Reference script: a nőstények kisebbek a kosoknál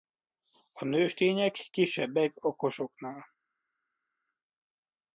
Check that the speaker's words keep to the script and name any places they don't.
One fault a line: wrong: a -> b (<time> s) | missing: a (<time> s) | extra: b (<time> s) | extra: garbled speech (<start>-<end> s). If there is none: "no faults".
no faults